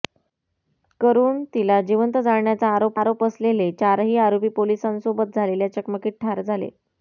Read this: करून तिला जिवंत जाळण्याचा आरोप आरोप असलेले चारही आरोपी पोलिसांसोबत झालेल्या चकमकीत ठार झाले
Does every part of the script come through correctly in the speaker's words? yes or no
yes